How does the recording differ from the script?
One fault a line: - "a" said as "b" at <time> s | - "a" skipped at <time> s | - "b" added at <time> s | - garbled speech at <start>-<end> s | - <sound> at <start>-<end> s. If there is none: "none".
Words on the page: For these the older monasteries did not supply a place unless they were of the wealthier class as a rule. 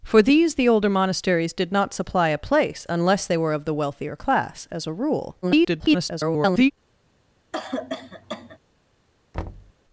- garbled speech at 5.4-6.7 s
- cough at 7.5-8.6 s
- thud at 9.3-9.7 s